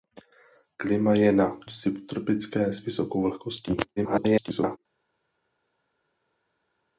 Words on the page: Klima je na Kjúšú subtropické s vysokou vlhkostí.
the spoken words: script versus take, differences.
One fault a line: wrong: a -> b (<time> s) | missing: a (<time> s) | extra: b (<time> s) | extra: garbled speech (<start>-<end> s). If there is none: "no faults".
missing: Kjúšú (1.6 s)
extra: garbled speech (4.0-4.8 s)